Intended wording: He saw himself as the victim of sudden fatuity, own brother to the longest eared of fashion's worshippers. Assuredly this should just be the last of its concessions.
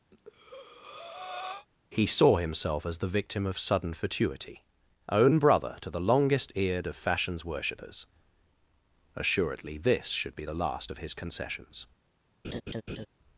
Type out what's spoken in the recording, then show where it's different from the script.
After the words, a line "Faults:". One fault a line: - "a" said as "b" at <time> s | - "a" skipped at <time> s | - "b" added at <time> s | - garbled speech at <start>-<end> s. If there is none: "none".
He saw himself as the victim of sudden fatuity, own brother to the longest eared of fashion's worshippers. Assuredly this should be the last of his concessions.
Faults:
- "just" skipped at 10.3 s
- "its" said as "his" at 11.0 s